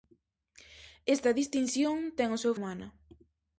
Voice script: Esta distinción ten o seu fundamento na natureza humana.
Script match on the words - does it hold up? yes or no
no